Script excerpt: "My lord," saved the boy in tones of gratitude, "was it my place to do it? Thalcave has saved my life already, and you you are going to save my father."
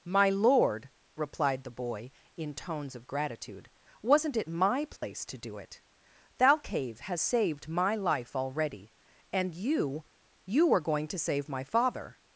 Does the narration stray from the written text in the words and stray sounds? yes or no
yes